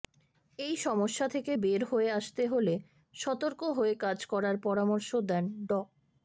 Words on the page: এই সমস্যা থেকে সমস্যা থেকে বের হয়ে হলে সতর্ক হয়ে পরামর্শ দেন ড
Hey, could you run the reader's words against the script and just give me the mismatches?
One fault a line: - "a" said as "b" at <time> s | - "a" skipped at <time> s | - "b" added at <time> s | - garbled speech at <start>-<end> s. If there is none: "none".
- "সমস্যা থেকে" skipped at 1.5 s
- "আসতে" added at 2.1 s
- "কাজ করার" added at 4.0 s